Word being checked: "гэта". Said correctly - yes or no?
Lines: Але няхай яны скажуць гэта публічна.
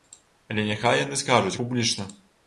no